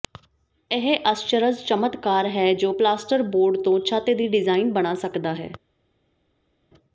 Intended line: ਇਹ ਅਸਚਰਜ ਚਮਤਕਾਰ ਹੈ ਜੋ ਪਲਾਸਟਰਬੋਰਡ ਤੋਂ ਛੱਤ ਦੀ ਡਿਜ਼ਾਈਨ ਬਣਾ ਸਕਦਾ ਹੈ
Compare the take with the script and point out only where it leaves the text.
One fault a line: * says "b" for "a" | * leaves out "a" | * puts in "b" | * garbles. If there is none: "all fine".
all fine